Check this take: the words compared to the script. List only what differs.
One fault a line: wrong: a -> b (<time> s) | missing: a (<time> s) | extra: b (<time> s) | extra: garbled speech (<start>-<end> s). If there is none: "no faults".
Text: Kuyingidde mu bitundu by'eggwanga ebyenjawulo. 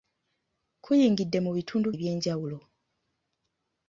missing: by'eggwanga (1.9 s)